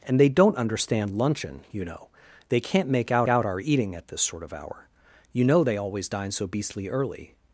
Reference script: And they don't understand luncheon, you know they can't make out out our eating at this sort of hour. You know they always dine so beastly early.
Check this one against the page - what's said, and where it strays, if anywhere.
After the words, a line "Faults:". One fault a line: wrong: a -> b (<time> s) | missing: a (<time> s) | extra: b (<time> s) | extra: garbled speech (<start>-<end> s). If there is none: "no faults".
And they don't understand luncheon, you know they can't make out out our eating at this sort of hour. You know they always dine so beastly early.
Faults:
no faults